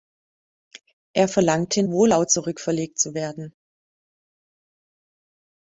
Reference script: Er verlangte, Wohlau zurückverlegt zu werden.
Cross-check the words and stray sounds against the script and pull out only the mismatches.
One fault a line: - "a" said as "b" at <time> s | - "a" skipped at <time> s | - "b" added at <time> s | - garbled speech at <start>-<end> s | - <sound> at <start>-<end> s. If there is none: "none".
none